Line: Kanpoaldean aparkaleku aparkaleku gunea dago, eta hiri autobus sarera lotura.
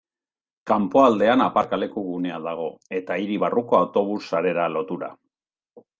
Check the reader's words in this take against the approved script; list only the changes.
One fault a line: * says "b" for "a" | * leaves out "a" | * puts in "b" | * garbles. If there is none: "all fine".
* leaves out "aparkaleku"
* puts in "barruko"